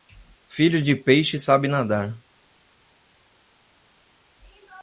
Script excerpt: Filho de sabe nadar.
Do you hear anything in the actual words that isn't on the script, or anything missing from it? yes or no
yes